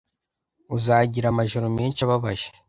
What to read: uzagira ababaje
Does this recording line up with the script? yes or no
no